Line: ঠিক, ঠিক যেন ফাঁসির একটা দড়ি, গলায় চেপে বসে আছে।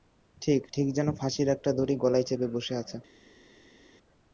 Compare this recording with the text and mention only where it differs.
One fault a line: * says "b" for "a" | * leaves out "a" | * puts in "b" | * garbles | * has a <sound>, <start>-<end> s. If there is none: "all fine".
all fine